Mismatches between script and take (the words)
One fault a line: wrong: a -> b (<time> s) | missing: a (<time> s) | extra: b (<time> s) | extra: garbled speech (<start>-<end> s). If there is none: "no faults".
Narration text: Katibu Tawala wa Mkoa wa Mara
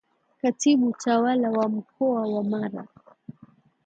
no faults